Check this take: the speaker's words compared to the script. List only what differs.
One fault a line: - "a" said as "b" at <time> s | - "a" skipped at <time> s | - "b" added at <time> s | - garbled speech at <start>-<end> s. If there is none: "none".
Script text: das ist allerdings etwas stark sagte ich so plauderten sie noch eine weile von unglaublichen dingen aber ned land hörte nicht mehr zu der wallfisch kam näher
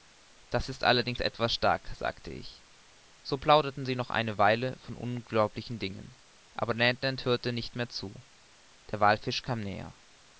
none